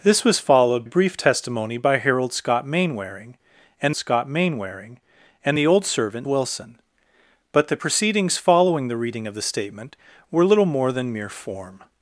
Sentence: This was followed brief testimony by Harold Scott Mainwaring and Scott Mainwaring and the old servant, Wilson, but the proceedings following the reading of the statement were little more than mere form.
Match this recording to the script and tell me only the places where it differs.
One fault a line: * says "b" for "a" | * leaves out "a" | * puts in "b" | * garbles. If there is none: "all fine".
all fine